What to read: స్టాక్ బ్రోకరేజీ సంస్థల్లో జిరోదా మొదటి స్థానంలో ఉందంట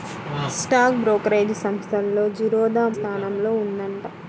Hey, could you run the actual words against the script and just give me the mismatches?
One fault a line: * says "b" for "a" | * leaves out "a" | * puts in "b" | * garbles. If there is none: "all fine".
* leaves out "మొదటి"